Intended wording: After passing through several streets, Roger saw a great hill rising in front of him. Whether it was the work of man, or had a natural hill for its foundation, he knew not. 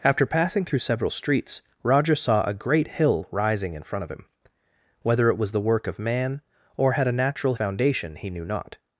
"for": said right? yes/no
no